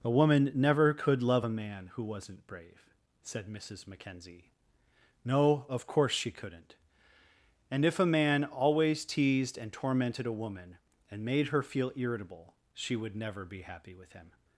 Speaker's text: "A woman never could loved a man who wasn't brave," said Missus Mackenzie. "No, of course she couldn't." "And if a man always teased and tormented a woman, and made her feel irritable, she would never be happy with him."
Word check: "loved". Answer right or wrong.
wrong